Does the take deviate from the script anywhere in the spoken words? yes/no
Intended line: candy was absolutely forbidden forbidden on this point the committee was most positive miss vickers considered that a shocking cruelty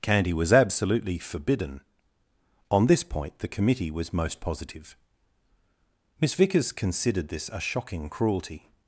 yes